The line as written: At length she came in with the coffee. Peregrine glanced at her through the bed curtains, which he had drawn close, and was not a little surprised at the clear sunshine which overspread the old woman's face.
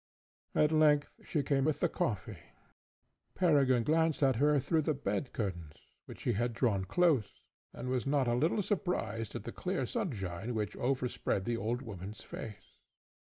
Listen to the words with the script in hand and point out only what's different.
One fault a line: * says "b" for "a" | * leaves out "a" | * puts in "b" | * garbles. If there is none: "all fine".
* leaves out "in"